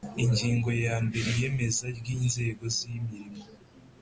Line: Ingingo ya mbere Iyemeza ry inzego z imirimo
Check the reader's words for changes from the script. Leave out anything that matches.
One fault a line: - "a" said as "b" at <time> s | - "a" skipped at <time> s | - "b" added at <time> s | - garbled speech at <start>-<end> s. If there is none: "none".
none